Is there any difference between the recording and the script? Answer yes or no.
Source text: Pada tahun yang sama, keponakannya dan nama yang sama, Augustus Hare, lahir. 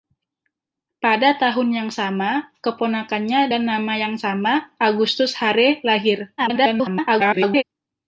yes